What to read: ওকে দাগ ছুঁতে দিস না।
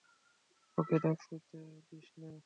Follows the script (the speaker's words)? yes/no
yes